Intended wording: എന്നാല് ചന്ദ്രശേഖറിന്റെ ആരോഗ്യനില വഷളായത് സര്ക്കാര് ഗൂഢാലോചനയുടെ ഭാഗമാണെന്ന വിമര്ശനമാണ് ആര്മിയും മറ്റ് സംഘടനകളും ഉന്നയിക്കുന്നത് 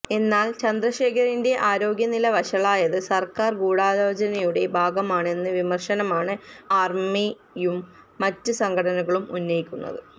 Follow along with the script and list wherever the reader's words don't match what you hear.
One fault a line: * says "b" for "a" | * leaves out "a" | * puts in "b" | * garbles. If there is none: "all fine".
all fine